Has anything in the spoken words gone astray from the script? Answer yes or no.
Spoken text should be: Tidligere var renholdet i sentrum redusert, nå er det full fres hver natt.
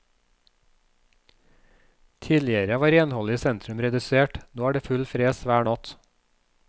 no